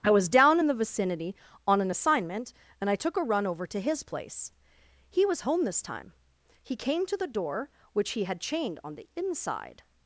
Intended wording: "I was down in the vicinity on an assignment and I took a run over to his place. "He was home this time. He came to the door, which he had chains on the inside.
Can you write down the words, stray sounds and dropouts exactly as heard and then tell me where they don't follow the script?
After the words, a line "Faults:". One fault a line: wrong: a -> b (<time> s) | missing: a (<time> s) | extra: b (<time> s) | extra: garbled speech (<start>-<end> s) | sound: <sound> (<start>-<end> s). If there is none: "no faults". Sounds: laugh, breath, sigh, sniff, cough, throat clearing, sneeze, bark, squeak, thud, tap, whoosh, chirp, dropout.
"I was down in the vicinity on an assignment and I took a run over to his place. "He was home this time. He came to the door, which he had chained on the inside.
Faults:
wrong: chains -> chained (8.4 s)